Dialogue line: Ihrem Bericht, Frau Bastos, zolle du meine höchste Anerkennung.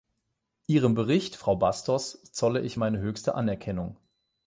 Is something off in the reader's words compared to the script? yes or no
yes